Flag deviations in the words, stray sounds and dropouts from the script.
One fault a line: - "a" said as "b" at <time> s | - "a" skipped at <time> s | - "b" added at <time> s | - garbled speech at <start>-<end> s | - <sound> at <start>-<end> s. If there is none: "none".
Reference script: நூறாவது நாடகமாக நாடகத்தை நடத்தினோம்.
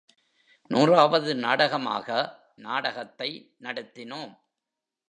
none